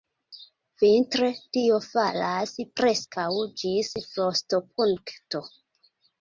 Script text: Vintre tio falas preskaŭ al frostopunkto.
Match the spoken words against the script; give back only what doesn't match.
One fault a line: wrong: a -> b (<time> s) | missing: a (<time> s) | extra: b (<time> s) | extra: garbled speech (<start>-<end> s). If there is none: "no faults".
wrong: al -> ĝis (3.6 s)